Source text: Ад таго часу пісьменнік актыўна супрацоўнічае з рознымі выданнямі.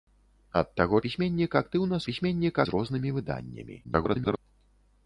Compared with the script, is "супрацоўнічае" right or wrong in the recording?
wrong